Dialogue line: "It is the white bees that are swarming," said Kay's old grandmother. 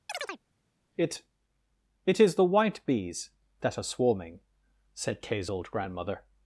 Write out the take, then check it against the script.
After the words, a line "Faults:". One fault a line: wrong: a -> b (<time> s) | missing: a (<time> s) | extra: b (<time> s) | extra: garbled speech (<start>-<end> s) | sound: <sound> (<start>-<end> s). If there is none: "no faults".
"It it is the white bees that are swarming," said Kay's old grandmother.
Faults:
sound: chirp (0.1-0.4 s)
extra: it (2.0 s)